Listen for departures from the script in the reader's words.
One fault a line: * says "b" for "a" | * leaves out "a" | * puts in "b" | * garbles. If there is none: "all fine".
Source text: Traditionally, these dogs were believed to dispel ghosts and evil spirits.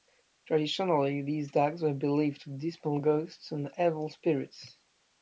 all fine